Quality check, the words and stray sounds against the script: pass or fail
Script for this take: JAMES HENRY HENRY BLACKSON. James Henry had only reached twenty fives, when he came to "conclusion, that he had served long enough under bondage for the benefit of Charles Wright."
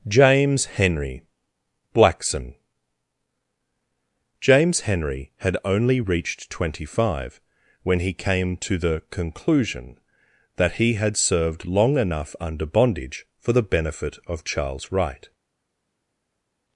fail